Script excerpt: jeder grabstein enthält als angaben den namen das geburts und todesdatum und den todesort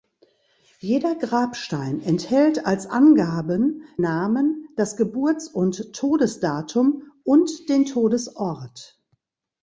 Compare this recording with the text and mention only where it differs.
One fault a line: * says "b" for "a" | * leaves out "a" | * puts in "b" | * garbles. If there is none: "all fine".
* leaves out "den"